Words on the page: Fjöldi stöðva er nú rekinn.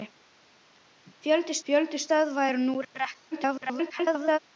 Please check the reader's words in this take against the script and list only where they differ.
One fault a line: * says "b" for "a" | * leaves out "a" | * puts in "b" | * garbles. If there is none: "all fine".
* puts in "fjöldi"
* garbles